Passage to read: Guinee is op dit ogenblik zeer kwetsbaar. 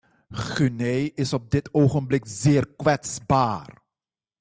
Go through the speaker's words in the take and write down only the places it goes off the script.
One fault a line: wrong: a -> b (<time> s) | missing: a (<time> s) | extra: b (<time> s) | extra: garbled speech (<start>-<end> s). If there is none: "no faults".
no faults